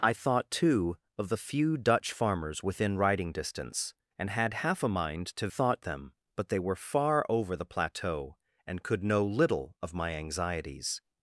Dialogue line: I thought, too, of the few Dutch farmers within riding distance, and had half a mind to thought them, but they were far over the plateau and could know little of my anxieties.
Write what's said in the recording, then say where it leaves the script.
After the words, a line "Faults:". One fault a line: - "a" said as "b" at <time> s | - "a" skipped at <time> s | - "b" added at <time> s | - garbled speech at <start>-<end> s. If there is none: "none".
I thought, too, of the few Dutch farmers within riding distance, and had half a mind to thought them, but they were far over the plateau and could know little of my anxieties.
Faults:
none